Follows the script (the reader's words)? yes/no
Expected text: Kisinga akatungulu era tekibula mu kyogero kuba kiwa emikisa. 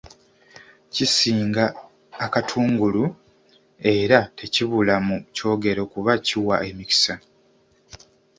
yes